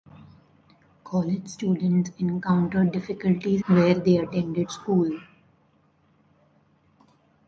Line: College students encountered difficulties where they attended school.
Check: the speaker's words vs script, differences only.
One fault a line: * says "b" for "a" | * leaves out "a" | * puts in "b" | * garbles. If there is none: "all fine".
all fine